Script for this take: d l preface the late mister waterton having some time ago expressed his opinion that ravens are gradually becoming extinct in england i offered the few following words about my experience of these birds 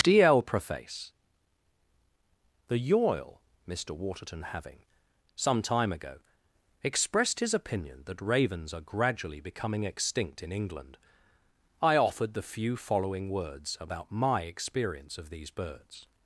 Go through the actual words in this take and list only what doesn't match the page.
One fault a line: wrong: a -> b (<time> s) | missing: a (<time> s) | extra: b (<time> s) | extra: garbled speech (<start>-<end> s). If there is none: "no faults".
wrong: late -> yoil (2.8 s)